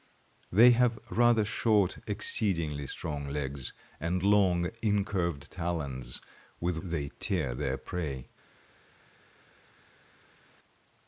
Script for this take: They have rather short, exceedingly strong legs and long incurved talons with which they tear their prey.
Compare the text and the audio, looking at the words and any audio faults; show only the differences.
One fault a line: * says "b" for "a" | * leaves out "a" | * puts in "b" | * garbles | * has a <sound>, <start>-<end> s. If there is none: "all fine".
* leaves out "which"